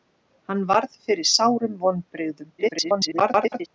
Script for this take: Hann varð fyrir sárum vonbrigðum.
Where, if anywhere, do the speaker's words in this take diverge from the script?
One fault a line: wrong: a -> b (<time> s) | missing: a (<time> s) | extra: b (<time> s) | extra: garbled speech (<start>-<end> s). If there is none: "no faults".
extra: garbled speech (2.6-3.7 s)